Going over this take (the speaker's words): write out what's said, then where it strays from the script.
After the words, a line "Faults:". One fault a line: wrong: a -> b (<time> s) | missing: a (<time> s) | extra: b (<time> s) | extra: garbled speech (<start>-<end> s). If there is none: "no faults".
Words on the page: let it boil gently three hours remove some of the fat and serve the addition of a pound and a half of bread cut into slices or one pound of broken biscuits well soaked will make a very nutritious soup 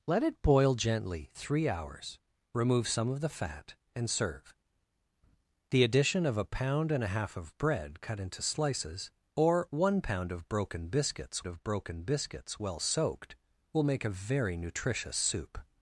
let it boil gently three hours remove some of the fat and serve the addition of a pound and a half of bread cut into slices or one pound of broken biscuits of broken biscuits well soaked will make a very nutritious soup
Faults:
extra: of broken biscuits (11.5 s)